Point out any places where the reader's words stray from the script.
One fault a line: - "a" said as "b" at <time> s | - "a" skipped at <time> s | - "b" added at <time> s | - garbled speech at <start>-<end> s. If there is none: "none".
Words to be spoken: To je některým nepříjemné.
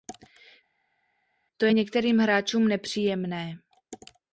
- "hráčům" added at 2.2 s